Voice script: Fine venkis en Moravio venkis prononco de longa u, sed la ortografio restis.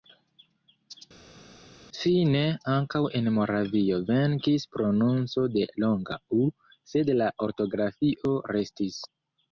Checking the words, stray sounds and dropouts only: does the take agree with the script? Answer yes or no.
no